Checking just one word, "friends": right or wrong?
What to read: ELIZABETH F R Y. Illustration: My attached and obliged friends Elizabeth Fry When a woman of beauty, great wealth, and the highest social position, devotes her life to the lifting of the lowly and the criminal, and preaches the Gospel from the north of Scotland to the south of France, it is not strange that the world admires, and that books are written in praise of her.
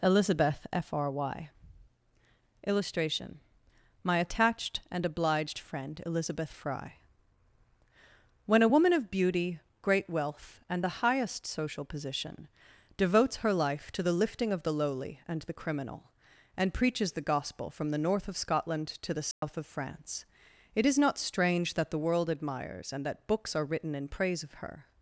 wrong